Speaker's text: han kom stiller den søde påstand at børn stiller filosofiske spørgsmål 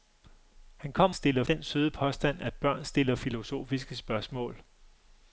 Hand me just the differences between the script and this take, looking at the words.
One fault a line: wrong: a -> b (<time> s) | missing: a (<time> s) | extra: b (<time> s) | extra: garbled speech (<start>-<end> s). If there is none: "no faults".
no faults